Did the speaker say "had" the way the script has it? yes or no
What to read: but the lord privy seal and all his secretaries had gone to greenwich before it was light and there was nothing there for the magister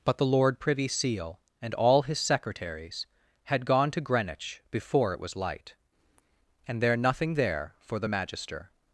yes